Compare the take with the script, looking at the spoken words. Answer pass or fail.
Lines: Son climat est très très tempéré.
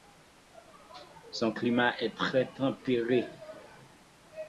fail